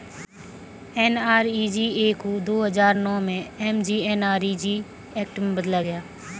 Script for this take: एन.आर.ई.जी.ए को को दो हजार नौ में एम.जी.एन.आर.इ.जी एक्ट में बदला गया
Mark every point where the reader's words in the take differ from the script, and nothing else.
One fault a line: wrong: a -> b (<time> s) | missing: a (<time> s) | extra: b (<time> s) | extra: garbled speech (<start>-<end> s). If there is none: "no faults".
missing: को (2.4 s)